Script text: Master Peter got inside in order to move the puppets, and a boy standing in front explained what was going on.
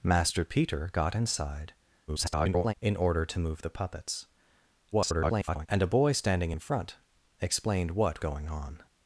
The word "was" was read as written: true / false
false